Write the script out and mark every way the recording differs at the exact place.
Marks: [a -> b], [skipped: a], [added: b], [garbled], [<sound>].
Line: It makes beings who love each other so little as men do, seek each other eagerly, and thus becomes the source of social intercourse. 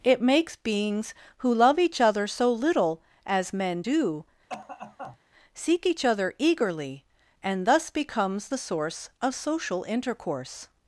It makes beings who love each other so little as men do, [cough] seek each other eagerly, and thus becomes the source of social intercourse.